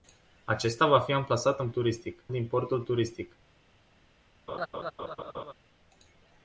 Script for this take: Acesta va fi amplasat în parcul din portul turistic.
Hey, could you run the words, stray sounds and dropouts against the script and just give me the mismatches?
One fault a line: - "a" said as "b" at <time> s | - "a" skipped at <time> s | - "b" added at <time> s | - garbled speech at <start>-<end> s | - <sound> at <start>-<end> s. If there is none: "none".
- "parcul" said as "turistic" at 1.7 s
- laugh at 4.5-5.5 s